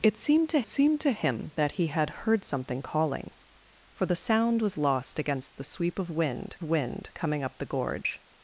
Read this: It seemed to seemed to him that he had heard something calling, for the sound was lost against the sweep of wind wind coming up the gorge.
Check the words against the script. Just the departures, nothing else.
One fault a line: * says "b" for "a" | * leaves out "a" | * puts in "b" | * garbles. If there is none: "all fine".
all fine